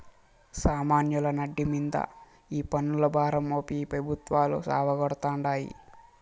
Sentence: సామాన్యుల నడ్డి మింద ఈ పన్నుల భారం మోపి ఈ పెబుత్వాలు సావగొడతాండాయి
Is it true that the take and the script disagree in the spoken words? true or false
false